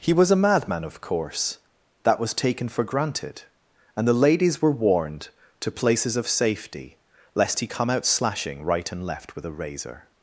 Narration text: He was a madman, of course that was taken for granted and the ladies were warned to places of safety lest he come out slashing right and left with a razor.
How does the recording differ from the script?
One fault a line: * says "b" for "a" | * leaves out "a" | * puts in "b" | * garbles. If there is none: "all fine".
all fine